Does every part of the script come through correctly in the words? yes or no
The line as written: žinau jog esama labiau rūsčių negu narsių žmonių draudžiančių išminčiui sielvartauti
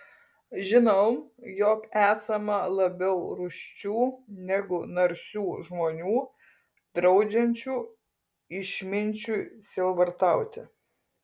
yes